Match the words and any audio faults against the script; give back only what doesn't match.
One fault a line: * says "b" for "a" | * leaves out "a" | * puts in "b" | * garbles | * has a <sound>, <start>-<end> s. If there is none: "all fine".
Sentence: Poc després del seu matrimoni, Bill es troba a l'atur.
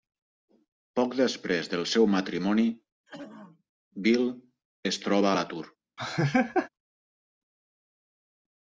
* has a throat clearing, 3.1-3.6 s
* has a laugh, 6.0-6.7 s